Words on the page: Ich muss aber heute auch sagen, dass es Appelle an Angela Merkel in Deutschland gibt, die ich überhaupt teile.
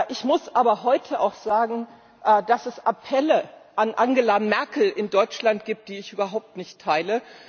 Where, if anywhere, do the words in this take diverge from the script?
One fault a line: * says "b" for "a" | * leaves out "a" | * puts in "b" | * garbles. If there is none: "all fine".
* puts in "nicht"